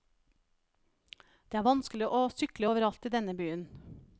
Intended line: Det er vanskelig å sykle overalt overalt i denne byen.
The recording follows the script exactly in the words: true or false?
false